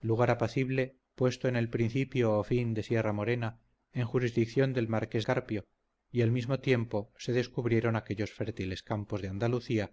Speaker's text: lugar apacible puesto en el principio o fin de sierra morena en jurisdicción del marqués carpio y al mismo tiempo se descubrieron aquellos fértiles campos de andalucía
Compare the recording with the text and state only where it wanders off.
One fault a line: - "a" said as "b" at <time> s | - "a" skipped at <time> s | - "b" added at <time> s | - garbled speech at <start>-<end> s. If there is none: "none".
none